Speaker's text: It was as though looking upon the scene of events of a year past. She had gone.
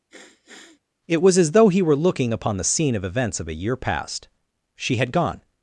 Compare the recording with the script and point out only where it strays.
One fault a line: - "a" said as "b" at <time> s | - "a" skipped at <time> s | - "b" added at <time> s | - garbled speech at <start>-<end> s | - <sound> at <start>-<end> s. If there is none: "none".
- sniff at 0.1-0.8 s
- "he were" added at 1.7 s